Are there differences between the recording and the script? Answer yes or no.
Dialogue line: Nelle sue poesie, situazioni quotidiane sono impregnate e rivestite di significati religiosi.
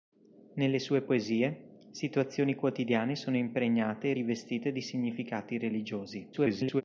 yes